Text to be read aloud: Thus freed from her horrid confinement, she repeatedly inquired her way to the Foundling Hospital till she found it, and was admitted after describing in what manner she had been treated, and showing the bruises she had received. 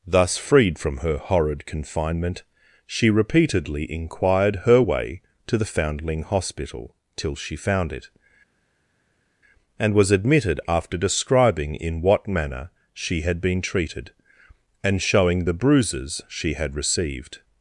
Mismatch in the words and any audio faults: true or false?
false